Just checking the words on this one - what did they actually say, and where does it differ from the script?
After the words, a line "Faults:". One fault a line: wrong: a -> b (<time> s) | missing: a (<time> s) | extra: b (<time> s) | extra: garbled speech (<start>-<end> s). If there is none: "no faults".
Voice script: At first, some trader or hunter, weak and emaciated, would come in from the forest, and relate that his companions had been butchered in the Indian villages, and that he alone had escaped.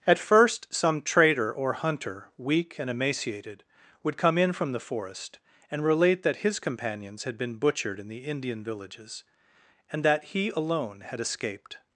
At first, some trader or hunter, weak and emaciated, would come in from the forest, and relate that his companions had been butchered in the Indian villages, and that he alone had escaped.
Faults:
no faults